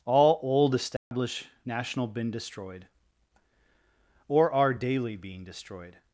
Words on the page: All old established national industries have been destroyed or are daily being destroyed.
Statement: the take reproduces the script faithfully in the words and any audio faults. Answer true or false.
false